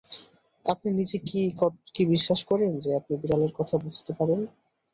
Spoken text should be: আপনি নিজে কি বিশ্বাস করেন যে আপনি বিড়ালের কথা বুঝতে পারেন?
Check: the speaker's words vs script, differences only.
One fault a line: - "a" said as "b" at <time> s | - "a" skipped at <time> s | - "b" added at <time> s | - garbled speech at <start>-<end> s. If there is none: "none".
none